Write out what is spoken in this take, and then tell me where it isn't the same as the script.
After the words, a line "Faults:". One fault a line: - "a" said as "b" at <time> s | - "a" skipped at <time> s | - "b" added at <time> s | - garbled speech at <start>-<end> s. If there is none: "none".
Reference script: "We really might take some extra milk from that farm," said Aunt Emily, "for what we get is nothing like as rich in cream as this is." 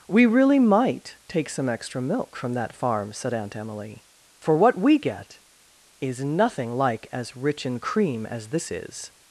"We really might take some extra milk from that farm," said Aunt Emily, "for what we get is nothing like as rich in cream as this is."
Faults:
none